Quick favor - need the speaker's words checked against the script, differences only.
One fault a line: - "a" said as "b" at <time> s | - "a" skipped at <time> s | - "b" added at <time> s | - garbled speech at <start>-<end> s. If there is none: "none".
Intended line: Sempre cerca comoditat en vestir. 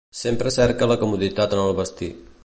- "la" added at 0.9 s
- "el" added at 1.6 s